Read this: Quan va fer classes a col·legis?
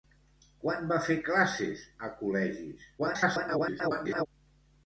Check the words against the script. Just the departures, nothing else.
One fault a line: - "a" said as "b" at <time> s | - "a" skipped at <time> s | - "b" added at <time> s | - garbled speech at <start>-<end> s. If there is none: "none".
- garbled speech at 3.0-4.3 s